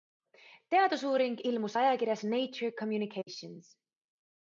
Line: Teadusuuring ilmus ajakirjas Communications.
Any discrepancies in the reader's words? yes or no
yes